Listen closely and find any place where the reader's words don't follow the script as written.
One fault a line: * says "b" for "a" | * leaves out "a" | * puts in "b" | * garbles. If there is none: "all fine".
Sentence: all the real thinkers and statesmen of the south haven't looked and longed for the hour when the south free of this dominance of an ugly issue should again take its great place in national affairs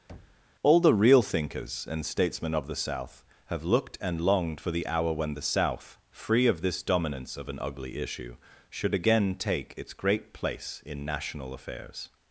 * says "have" for "haven't"